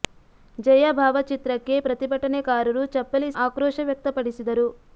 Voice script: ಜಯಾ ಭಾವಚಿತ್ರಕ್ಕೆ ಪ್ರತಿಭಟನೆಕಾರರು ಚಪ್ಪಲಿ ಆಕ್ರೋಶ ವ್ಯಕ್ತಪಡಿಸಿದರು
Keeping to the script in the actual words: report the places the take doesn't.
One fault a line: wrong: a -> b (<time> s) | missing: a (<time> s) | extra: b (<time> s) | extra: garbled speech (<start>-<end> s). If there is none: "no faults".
no faults